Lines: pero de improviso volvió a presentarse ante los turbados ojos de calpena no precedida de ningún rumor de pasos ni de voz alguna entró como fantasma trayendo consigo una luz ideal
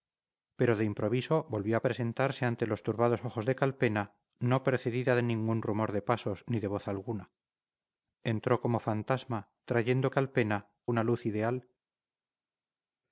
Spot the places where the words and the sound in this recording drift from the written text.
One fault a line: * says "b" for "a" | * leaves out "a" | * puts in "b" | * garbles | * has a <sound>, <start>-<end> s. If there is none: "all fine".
* says "calpena" for "consigo"